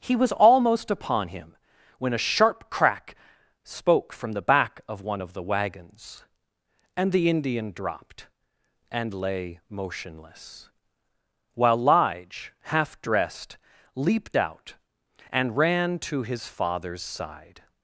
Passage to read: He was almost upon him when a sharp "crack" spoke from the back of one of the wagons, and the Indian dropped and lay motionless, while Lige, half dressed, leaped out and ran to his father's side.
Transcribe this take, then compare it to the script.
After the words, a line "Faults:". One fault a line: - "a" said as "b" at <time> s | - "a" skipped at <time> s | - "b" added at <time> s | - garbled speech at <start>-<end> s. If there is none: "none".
He was almost upon him when a sharp "crack" spoke from the back of one of the wagons, and the Indian dropped and lay motionless, while Lige, half dressed, leaped out and ran to his father's side.
Faults:
none